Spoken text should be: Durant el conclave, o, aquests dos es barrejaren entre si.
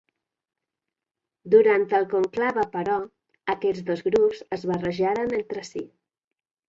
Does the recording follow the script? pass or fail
fail